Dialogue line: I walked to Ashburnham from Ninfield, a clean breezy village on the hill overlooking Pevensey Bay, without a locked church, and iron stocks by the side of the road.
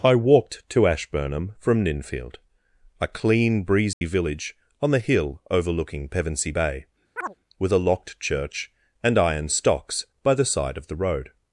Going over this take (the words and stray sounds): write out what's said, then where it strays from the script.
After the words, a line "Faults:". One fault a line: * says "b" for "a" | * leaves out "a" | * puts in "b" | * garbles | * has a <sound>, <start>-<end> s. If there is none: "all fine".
I walked to Ashburnham from Ninfield, a clean breezy village on the hill overlooking Pevensey Bay, with a locked church, and iron stocks by the side of the road.
Faults:
* has a dropout, 3.9-4.0 s
* has a chirp, 7.2-7.3 s
* says "with" for "without"